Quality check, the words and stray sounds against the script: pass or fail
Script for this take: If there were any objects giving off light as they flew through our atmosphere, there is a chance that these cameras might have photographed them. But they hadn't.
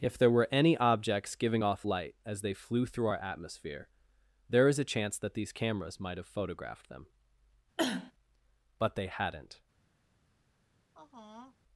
fail